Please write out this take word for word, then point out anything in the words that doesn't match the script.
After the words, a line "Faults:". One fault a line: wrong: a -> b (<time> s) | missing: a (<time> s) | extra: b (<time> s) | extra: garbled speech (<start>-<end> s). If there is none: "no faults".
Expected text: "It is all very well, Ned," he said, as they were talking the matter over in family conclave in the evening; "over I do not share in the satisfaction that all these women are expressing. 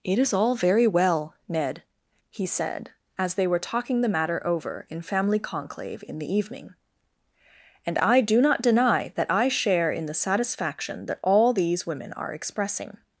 "It is all very well, Ned," he said, as they were talking the matter over in family conclave in the evening; "and I do not deny that I share in the satisfaction that all these women are expressing.
Faults:
wrong: over -> and (7.8 s)
extra: deny that I (8.6 s)